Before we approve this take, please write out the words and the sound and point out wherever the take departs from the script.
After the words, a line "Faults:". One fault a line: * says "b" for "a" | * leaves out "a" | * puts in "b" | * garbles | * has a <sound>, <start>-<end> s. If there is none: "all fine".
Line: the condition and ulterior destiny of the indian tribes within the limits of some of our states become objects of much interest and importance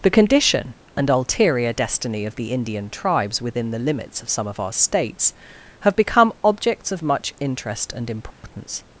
the condition and ulterior destiny of the indian tribes within the limits of some of our states have become objects of much interest and importance
Faults:
* puts in "have"
* has a dropout, 8.3-8.4 s